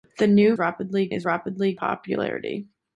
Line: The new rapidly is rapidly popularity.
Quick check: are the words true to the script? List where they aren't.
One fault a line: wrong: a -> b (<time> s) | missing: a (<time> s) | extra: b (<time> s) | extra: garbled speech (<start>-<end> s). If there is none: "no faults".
no faults